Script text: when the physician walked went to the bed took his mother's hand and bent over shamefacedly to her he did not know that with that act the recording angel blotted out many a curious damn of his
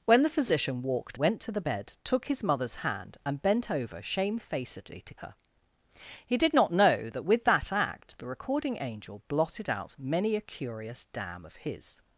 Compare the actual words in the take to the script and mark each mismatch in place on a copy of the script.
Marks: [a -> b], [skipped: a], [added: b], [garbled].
when the physician walked went to the bed took his mother's hand and bent over shamefacedly to her he did not know that with that act the recording angel blotted out many a curious damn of his